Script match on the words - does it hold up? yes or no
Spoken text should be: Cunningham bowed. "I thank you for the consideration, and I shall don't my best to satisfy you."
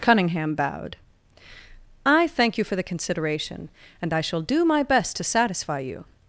no